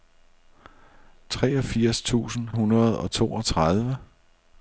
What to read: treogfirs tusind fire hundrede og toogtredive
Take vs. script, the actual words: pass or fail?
fail